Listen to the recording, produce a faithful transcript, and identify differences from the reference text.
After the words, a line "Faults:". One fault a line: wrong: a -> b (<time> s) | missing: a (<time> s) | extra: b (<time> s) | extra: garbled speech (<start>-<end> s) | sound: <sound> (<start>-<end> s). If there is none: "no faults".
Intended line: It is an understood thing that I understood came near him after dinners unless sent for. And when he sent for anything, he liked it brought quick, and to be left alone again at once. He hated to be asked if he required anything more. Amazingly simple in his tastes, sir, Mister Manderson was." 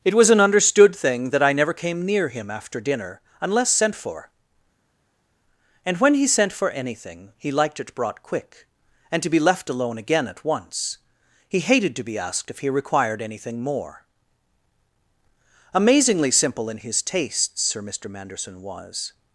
It was an understood thing that I never came near him after dinner unless sent for. And when he sent for anything, he liked it brought quick, and to be left alone again at once. He hated to be asked if he required anything more. Amazingly simple in his tastes, sir, Mister Manderson was."
Faults:
wrong: is -> was (0.1 s)
wrong: understood -> never (1.5 s)
wrong: dinners -> dinner (2.8 s)